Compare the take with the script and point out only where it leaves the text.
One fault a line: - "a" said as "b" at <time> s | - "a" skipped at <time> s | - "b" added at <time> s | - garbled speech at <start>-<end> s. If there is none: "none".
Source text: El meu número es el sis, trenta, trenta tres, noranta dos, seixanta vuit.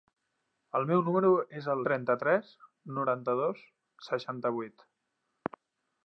- "sis trenta" skipped at 1.8 s